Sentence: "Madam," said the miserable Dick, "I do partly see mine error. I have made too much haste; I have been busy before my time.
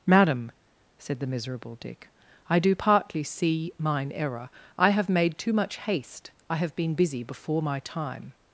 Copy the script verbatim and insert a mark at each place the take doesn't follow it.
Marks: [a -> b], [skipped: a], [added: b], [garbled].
"Madam," said the miserable Dick, "I do partly see mine error. I have made too much haste; I have been busy before my time.